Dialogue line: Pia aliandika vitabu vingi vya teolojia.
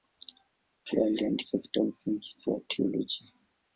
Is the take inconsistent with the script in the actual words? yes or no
no